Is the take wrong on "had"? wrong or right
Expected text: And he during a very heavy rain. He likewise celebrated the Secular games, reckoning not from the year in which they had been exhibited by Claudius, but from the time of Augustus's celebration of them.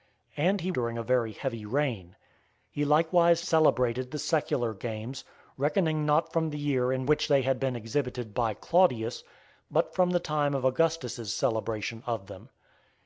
right